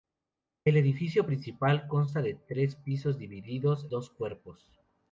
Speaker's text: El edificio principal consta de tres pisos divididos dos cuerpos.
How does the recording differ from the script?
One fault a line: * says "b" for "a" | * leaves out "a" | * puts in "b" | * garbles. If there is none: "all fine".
all fine